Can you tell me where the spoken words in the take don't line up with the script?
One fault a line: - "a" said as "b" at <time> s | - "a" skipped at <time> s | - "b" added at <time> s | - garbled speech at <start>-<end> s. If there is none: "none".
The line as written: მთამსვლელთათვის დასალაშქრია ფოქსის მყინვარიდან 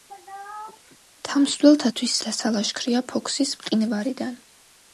none